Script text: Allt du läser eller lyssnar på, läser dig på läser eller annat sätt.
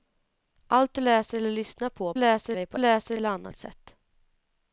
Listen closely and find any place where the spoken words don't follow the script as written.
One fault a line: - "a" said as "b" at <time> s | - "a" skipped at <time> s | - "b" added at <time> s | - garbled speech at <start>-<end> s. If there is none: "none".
none